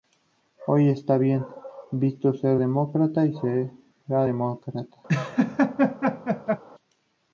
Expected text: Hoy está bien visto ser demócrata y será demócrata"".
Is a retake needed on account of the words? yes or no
no